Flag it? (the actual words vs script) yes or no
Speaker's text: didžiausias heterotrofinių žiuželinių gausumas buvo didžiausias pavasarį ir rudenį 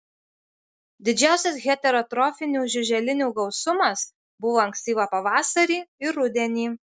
yes